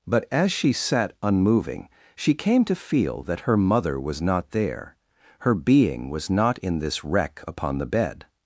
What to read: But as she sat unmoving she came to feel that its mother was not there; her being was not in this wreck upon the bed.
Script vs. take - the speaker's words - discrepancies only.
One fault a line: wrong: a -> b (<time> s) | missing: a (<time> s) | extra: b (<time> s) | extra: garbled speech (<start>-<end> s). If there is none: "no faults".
wrong: its -> her (3.4 s)